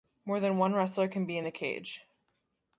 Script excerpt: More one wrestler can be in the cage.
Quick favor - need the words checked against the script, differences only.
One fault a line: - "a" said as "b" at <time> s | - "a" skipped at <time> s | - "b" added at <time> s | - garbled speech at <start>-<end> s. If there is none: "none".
- "than" added at 0.4 s